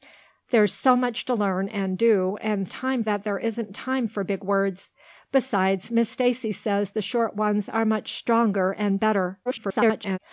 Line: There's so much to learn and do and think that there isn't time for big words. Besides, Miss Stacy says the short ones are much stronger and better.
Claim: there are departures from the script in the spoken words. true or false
true